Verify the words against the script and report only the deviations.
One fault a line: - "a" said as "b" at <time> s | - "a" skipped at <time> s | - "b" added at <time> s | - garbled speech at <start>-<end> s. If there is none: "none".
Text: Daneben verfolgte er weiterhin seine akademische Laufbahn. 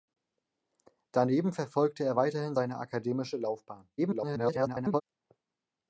- garbled speech at 4.0-5.0 s